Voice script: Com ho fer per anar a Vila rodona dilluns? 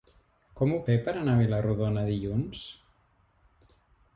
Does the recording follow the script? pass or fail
pass